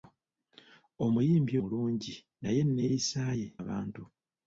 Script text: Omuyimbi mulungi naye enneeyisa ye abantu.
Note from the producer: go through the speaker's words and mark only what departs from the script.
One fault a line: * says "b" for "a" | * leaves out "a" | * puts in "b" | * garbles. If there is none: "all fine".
all fine